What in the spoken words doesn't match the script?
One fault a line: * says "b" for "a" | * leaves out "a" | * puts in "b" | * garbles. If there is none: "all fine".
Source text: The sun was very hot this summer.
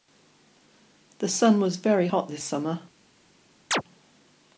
all fine